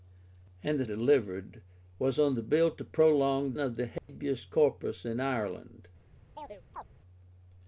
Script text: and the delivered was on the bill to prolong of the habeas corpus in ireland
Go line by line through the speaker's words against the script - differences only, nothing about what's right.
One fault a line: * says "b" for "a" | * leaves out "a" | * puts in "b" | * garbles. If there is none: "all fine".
all fine